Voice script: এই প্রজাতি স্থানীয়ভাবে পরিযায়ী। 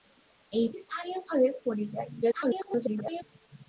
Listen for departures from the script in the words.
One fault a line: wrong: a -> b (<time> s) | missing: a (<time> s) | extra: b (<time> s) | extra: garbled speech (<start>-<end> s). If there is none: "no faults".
missing: প্রজাতি (0.7 s)
extra: garbled speech (2.2-3.2 s)